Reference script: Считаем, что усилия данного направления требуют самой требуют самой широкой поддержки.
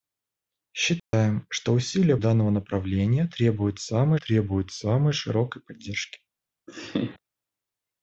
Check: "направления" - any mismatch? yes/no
no